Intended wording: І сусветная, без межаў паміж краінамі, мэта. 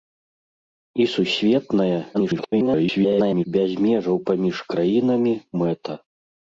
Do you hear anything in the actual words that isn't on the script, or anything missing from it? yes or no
yes